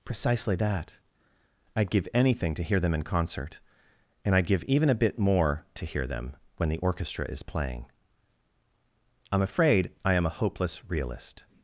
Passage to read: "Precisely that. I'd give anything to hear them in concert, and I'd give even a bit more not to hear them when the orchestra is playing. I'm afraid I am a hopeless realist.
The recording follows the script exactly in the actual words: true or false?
false